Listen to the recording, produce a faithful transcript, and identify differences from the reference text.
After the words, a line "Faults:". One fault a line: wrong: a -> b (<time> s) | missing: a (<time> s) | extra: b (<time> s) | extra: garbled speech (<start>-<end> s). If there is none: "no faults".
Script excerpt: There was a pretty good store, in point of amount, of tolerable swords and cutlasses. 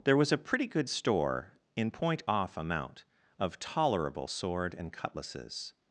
There was a pretty good store, in point off amount, of tolerable sword and cutlasses.
Faults:
wrong: of -> off (2.3 s)
wrong: swords -> sword (4.3 s)